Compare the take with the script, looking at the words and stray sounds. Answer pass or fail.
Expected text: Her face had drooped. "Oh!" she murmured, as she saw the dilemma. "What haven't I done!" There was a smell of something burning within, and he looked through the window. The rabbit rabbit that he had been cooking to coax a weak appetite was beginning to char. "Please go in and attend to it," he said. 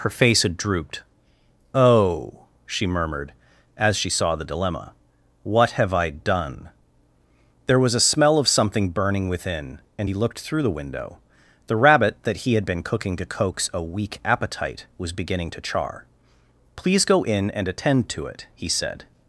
fail